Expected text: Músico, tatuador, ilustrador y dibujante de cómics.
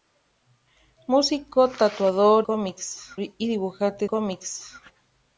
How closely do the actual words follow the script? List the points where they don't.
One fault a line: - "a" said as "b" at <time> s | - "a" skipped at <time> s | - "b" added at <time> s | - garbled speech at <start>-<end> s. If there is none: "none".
- "ilustrador" said as "cómics" at 2.4 s
- "de" skipped at 4.1 s